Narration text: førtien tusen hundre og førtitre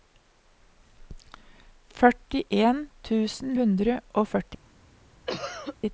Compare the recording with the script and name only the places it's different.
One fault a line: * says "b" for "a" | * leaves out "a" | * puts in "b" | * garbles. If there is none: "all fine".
all fine